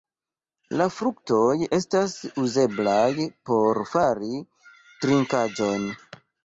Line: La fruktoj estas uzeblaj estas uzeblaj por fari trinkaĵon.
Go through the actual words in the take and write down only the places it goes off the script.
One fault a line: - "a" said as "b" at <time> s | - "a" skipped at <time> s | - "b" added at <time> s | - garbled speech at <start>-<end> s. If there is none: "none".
- "estas uzeblaj" skipped at 3.3 s